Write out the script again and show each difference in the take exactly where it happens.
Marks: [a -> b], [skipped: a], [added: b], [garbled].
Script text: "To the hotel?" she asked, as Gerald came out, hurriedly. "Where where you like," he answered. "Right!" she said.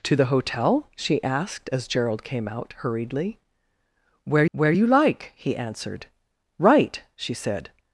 "To the hotel?" she asked, as Gerald came out, hurriedly. "Where where you like," he answered. "Right!" she said.